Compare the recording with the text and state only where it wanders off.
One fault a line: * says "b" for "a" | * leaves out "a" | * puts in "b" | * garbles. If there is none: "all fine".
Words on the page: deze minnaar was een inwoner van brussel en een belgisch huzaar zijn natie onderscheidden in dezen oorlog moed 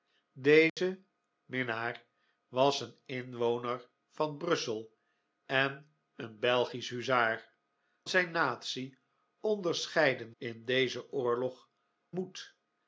all fine